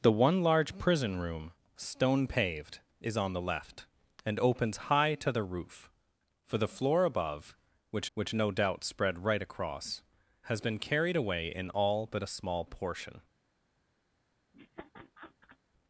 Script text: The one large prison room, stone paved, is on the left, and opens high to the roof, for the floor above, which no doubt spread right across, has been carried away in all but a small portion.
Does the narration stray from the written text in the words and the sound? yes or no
yes